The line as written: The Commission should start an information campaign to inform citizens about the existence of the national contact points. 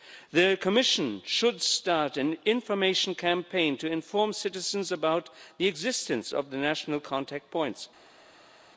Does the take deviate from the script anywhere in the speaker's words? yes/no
no